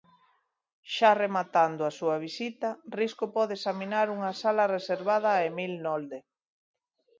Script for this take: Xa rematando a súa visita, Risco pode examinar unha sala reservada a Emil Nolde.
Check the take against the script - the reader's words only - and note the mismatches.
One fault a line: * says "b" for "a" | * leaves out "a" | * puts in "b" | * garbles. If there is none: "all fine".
all fine